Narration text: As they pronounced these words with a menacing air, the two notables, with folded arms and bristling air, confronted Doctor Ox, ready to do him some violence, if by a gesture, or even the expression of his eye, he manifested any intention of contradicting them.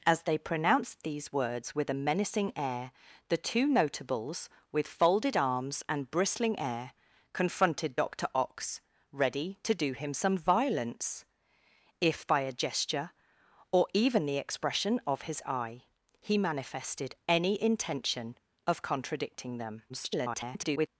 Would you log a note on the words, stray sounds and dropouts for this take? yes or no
yes